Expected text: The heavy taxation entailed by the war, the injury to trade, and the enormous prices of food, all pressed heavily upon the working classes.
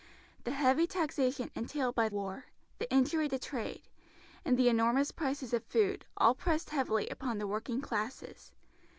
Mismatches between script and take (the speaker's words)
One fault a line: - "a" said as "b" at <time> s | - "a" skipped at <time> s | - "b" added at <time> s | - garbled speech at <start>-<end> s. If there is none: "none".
- "the" skipped at 2.1 s